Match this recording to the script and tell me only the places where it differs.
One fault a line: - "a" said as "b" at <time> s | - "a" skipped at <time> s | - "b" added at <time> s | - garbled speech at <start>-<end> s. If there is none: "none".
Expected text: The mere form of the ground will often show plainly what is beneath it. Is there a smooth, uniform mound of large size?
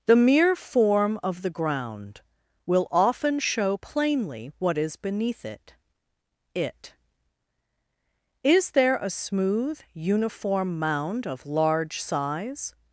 - "it" added at 6.5 s